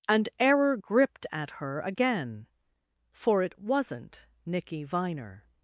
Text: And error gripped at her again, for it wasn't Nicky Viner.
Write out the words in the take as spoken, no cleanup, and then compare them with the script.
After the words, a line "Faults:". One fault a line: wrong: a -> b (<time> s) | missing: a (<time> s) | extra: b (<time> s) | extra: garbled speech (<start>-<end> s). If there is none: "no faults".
And error gripped at her again, for it wasn't Nicky Viner.
Faults:
no faults